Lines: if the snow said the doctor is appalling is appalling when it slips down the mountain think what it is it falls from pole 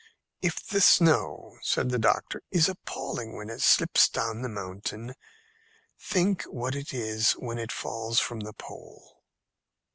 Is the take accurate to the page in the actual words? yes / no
no